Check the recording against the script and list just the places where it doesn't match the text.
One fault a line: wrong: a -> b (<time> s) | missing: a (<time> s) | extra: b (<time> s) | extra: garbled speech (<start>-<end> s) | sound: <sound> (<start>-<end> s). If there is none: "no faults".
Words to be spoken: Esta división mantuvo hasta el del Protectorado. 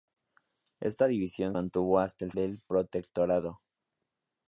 no faults